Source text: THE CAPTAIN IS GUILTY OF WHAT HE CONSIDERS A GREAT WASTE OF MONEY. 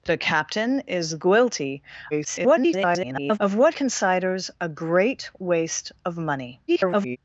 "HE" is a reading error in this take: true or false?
true